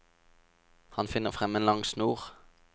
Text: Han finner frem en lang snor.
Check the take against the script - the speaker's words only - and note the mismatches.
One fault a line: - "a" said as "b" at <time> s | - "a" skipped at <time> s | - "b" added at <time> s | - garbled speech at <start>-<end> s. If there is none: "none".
none